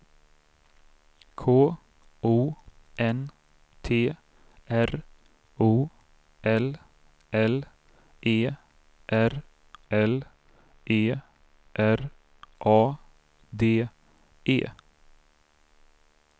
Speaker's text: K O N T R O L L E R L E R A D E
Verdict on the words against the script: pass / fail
pass